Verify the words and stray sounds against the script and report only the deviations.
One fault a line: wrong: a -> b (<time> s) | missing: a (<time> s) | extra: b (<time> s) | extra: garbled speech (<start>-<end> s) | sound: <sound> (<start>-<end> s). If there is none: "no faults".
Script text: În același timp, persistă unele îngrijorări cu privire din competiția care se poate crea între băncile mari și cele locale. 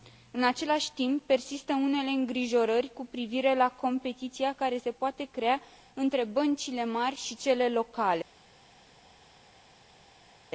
wrong: din -> la (3.5 s)